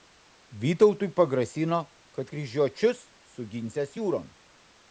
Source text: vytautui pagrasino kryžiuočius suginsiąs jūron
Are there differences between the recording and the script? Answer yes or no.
yes